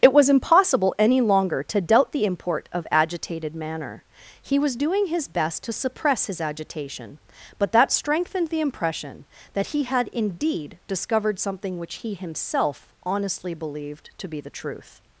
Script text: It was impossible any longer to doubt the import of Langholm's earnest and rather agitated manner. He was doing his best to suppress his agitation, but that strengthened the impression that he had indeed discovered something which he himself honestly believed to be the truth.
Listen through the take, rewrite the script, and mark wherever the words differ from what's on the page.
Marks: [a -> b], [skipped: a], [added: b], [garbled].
It was impossible any longer to doubt the import of [skipped: Langholm's earnest and rather] agitated manner. He was doing his best to suppress his agitation, but that strengthened the impression that he had indeed discovered something which he himself honestly believed to be the truth.